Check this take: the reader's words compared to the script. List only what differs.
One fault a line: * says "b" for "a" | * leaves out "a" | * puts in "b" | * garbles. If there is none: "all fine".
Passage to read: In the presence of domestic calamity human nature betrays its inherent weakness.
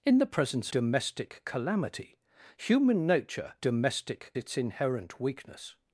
* leaves out "of"
* says "domestic" for "betrays"